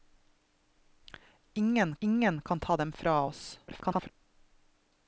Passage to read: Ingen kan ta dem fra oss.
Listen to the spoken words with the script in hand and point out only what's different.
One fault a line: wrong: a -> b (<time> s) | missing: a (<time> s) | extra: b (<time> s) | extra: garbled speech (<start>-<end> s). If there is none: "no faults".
extra: ingen (2.0 s)
extra: garbled speech (3.7-4.1 s)